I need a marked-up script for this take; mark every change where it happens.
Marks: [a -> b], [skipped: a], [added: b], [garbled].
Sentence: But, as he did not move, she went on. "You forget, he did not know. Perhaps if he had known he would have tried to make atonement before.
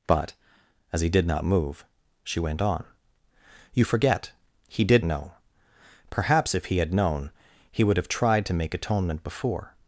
But, as he did not move, she went on. "You forget, he did [skipped: not] know. Perhaps if he had known he would have tried to make atonement before.